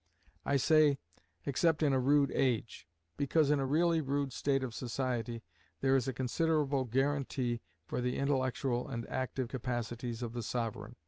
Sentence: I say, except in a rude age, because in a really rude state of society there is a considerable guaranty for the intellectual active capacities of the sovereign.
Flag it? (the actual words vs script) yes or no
yes